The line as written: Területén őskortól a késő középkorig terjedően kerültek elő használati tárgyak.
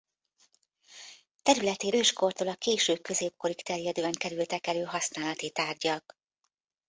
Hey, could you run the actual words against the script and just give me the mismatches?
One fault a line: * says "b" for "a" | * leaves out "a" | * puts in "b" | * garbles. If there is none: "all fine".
all fine